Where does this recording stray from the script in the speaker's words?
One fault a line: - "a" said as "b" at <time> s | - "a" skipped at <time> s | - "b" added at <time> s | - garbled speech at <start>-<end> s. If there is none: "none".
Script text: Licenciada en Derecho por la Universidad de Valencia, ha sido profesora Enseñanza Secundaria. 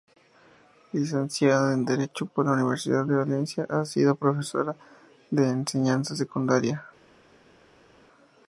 - "de" added at 5.3 s